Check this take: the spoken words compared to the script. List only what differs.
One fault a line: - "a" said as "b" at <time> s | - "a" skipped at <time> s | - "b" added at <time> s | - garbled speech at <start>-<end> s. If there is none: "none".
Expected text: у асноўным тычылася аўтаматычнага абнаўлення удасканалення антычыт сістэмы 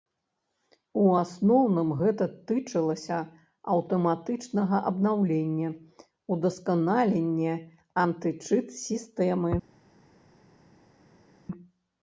- "гэта" added at 2.0 s